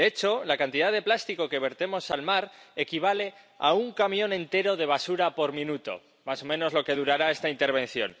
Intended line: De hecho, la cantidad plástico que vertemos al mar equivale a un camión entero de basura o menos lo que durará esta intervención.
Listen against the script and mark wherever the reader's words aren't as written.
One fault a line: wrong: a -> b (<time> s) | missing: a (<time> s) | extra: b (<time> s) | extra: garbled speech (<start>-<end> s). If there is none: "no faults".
extra: de (0.9 s)
extra: por minuto más (5.3 s)